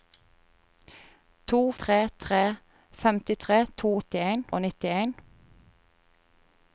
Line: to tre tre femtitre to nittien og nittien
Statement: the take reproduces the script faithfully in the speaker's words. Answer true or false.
true